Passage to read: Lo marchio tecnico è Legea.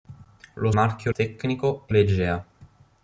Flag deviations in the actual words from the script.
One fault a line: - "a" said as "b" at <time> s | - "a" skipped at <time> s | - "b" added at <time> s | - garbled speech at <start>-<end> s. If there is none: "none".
none